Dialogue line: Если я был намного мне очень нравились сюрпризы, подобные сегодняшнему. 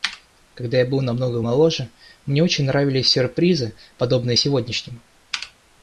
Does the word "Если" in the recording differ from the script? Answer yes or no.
yes